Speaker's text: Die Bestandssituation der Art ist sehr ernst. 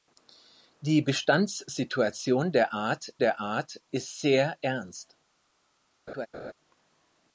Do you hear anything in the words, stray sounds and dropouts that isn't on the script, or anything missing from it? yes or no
yes